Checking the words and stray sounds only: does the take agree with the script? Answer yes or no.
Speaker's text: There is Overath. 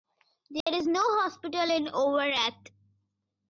no